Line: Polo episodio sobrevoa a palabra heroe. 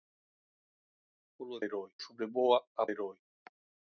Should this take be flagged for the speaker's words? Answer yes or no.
yes